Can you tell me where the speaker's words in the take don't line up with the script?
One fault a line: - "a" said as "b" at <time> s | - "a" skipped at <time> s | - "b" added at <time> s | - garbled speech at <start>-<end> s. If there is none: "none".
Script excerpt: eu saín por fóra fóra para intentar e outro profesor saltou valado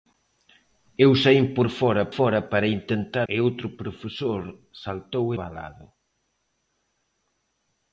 none